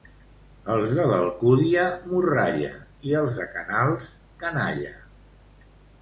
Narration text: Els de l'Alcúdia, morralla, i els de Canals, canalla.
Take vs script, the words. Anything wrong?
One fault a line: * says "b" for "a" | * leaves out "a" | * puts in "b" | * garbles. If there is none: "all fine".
all fine